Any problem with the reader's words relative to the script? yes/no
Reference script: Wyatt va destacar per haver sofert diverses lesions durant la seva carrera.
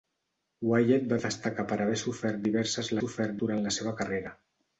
yes